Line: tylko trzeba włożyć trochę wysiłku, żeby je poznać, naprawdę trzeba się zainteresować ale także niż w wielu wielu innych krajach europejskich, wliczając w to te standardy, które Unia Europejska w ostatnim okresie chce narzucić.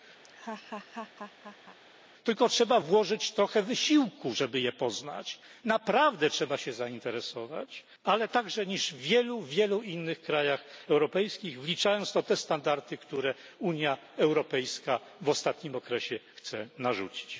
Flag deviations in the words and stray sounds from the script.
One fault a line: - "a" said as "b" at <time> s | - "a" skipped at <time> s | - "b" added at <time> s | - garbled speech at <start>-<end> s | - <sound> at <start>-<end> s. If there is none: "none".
- laugh at 0.2-1.8 s